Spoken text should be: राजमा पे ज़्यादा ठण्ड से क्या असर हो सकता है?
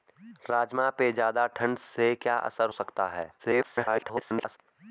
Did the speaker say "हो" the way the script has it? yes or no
no